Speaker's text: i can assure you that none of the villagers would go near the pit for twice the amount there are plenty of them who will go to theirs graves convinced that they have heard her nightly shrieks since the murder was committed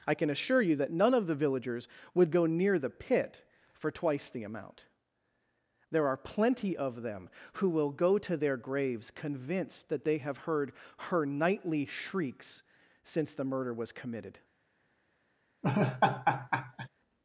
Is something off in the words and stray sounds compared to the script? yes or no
yes